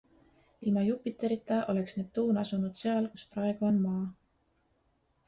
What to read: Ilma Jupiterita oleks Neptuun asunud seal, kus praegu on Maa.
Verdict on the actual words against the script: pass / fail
pass